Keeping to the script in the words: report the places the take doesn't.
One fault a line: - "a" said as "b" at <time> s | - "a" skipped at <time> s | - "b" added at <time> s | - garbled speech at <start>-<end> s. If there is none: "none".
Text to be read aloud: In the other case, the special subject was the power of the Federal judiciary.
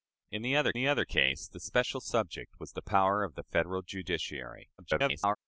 - "the other" added at 0.7 s
- garbled speech at 4.8-5.4 s